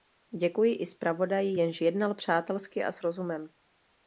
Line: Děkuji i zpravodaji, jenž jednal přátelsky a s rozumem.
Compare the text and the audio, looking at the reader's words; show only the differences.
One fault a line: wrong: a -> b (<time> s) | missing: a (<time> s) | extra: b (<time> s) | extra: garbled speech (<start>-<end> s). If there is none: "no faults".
no faults